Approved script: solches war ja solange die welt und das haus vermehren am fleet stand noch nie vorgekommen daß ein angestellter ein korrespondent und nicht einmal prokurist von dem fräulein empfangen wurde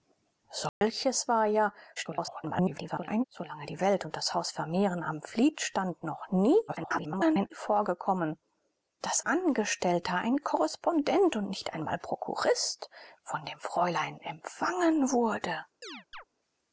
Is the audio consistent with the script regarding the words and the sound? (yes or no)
no